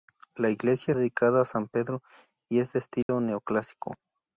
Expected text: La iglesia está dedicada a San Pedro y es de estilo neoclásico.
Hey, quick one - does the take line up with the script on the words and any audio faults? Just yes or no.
no